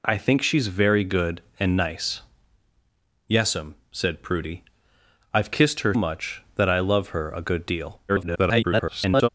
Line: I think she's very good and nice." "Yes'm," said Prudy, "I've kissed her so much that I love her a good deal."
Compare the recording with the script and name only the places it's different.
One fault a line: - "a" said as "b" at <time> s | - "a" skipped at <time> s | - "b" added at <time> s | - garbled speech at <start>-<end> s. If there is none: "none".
- "so" skipped at 5.9 s
- garbled speech at 8.1-9.3 s